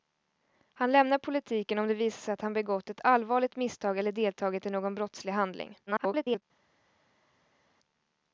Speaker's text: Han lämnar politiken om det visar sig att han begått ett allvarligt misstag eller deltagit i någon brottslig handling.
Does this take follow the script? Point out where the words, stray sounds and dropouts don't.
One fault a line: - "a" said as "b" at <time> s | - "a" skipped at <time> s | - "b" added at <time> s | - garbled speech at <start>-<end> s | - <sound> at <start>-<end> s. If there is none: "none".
- garbled speech at 5.9-6.4 s